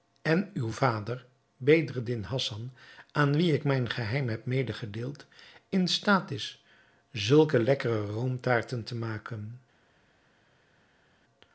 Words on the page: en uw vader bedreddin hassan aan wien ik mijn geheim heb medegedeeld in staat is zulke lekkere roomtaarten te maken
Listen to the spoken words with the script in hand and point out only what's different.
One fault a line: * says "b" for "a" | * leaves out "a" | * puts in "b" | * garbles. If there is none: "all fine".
all fine